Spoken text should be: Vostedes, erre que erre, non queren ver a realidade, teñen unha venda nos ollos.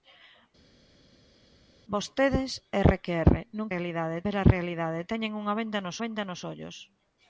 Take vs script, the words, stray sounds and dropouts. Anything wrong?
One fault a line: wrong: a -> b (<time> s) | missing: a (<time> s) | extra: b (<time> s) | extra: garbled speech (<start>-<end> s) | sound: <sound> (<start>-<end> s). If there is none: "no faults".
wrong: queren -> realidade (3.7 s)
extra: venda nos (6.0 s)